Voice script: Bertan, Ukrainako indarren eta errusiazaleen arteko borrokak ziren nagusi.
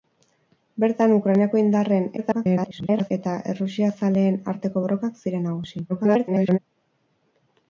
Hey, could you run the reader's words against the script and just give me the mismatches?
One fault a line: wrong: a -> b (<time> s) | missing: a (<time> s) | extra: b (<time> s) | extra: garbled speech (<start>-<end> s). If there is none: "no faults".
extra: garbled speech (2.2-3.1 s)
extra: garbled speech (5.9-6.6 s)